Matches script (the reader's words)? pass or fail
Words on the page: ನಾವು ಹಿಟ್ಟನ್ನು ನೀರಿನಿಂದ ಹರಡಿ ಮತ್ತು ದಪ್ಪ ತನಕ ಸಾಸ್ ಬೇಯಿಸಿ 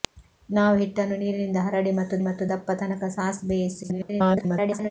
fail